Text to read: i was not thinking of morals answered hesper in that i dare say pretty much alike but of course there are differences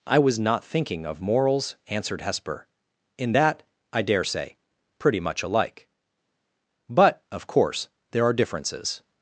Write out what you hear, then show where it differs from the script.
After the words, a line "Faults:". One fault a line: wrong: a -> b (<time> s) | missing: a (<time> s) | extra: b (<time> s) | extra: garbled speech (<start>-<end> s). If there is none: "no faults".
i was not thinking of morals answered hesper in that i dare say pretty much alike but of course there are differences
Faults:
no faults